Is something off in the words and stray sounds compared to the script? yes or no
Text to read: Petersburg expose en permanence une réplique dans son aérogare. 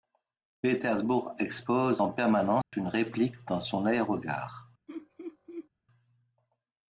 yes